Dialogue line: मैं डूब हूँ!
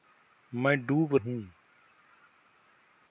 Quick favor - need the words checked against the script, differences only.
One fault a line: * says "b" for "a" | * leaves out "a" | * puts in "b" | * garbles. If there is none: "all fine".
all fine